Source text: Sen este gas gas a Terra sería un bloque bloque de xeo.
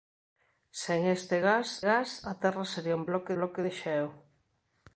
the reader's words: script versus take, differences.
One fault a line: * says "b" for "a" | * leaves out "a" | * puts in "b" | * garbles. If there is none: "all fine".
all fine